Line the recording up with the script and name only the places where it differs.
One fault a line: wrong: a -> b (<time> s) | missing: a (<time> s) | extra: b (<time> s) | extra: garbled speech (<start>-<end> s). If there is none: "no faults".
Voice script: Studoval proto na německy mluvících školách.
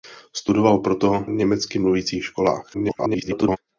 missing: na (1.2 s)
extra: garbled speech (2.7-3.6 s)